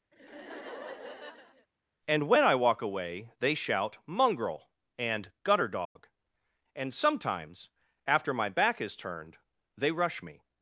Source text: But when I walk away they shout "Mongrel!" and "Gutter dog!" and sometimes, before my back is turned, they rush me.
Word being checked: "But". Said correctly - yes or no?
no